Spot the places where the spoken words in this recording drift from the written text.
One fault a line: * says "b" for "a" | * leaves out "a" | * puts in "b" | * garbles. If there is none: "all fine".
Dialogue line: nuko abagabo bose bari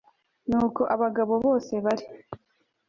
all fine